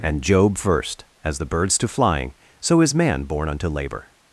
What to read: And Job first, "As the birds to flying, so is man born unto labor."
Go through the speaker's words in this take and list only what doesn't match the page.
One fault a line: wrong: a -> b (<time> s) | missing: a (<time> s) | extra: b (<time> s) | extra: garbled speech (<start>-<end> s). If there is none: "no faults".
no faults